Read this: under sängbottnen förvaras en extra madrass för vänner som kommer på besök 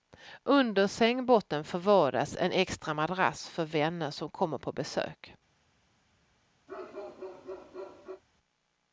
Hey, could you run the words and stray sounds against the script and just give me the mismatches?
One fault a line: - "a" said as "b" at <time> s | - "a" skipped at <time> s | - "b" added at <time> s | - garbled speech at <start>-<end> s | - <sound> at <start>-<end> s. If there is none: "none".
- bark at 6.7-8.2 s